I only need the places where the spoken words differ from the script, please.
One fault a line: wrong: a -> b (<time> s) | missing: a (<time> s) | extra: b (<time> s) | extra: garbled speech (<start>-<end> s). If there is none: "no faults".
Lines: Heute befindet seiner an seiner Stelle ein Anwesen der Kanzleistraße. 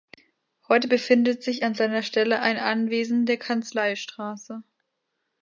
wrong: seiner -> sich (1.4 s)